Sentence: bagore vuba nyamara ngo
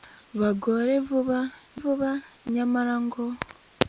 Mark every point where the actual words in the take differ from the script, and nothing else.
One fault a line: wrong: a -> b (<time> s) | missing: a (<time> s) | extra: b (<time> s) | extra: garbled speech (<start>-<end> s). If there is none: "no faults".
extra: vuba (1.8 s)